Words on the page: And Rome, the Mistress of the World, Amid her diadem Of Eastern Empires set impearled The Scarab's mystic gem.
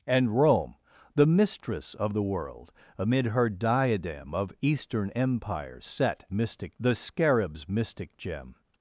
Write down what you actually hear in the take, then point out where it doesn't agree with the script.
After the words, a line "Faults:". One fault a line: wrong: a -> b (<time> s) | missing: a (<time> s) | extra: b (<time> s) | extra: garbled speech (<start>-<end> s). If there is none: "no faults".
And Rome, the Mistress of the World, Amid her diadem Of Eastern Empires set mystic The Scarab's mystic gem.
Faults:
wrong: impearled -> mystic (6.3 s)